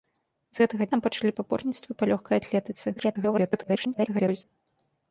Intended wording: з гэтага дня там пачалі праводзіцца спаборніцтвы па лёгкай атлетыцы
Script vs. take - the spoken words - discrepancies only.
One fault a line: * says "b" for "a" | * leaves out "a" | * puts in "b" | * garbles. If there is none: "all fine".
* leaves out "дня"
* leaves out "праводзіцца"
* garbles